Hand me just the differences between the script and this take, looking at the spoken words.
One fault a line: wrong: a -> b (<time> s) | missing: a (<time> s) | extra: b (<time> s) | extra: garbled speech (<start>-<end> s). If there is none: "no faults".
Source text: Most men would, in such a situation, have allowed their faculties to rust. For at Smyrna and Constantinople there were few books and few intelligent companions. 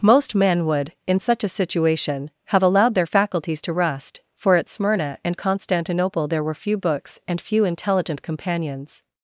no faults